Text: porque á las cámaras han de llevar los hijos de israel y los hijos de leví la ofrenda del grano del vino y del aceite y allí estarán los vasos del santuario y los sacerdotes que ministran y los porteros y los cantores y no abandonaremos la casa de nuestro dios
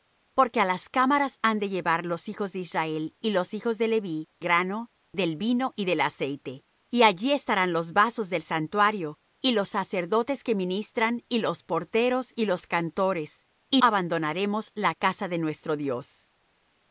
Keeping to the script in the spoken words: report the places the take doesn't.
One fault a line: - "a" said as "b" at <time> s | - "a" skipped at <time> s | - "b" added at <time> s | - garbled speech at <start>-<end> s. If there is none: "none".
- "la ofrenda del" skipped at 4.3 s
- "no" skipped at 13.8 s